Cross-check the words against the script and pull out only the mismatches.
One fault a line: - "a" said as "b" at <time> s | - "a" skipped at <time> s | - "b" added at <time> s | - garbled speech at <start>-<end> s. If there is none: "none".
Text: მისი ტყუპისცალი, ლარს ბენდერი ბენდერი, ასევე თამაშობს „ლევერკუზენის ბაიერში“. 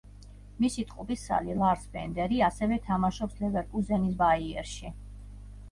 - "ბენდერი" skipped at 2.4 s